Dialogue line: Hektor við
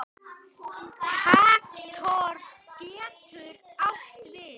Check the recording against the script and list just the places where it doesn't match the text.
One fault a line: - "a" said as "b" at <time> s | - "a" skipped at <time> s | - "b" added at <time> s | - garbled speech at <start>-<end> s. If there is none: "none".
- "getur átt" added at 2.8 s